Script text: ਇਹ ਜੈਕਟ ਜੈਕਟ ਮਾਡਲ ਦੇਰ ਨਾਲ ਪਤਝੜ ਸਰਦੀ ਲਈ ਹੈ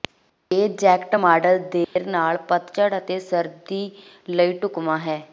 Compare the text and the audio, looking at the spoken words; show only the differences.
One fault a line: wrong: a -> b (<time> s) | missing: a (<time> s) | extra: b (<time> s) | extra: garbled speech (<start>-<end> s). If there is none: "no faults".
missing: ਜੈਕਟ (1.1 s)
extra: ਅਤੇ (3.0 s)
extra: ਢੁਕਵਾਂ (4.6 s)